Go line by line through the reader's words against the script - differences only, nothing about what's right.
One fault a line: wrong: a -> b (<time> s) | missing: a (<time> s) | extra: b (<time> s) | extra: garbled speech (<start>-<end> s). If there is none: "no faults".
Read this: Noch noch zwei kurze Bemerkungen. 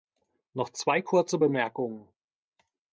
missing: noch (0.7 s)